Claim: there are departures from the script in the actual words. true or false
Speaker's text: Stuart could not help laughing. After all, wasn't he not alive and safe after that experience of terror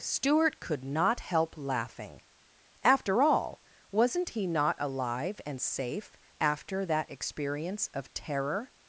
false